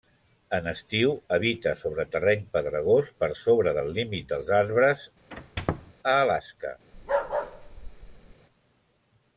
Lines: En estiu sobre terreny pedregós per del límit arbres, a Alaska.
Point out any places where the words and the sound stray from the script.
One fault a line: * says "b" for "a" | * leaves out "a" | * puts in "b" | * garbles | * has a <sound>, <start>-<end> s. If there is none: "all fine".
* puts in "habita"
* puts in "sobre"
* puts in "dels"
* has a squeak, 5.3-5.9 s
* has a bark, 6.9-8.4 s